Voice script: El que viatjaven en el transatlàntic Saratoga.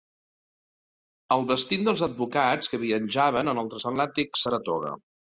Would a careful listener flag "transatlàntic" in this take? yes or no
no